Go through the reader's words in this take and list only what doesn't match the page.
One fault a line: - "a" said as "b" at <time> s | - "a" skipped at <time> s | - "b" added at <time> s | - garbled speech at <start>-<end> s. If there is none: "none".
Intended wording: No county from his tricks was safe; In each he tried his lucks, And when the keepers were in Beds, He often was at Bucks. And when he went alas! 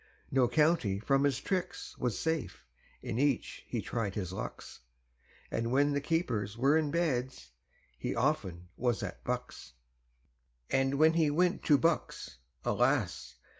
- "to Bucks" added at 11.7 s